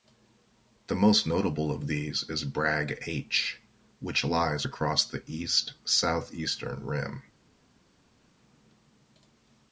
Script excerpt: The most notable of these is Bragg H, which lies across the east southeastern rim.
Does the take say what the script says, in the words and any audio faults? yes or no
yes